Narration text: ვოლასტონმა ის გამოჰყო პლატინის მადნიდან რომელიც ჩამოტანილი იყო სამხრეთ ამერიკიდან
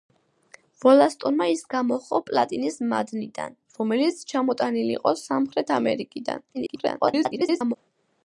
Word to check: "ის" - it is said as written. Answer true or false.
true